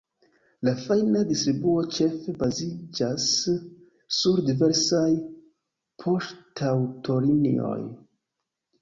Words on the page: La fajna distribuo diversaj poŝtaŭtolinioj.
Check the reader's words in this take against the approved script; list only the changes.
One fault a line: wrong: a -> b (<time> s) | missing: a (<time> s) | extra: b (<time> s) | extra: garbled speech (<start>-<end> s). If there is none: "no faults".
extra: ĉefe baziĝas sur (2.0 s)